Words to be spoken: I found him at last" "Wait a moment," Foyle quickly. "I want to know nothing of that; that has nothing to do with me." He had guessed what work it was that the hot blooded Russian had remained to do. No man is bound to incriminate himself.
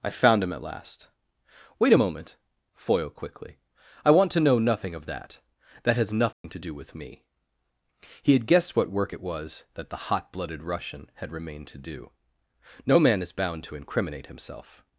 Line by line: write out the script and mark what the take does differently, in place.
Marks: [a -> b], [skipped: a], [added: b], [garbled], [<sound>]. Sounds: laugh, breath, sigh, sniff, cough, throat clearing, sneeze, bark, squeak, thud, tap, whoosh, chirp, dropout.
I found him at last" "Wait a moment," Foyle quickly. "I want to know nothing of that; that has nothing [dropout] to do with me." He had guessed what work it was that the hot blooded Russian had remained to do. No man is bound to incriminate himself.